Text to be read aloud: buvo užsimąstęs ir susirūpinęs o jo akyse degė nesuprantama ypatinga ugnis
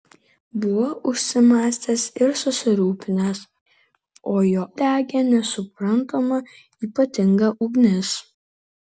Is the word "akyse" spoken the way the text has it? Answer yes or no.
no